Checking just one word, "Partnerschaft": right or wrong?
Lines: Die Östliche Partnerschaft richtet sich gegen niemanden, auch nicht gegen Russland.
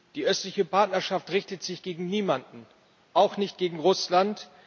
right